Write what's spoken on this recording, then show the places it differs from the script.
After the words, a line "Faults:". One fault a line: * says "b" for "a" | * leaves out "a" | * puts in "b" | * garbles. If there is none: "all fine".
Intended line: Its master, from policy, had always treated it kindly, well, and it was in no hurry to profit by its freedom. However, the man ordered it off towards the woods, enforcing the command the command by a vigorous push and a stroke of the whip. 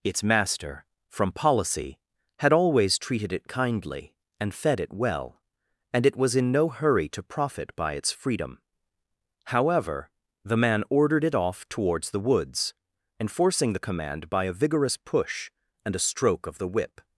Its master, from policy, had always treated it kindly, and fed it well, and it was in no hurry to profit by its freedom. However, the man ordered it off towards the woods, enforcing the command by a vigorous push and a stroke of the whip.
Faults:
* puts in "and fed it"
* leaves out "the command"